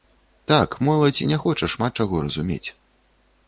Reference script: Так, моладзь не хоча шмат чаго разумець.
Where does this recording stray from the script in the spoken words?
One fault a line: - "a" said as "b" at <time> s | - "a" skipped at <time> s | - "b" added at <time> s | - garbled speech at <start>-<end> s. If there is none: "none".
none